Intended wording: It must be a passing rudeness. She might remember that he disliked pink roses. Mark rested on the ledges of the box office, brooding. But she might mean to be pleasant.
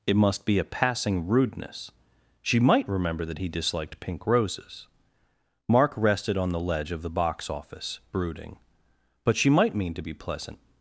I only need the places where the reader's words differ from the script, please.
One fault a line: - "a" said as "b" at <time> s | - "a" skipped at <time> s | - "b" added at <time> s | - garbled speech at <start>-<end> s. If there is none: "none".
- "ledges" said as "ledge" at 6.6 s